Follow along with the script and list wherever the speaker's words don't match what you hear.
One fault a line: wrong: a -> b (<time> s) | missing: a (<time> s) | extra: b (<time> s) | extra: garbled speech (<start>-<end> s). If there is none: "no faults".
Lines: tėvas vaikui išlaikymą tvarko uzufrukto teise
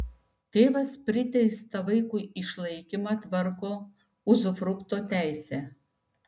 extra: priteistą (1.1 s)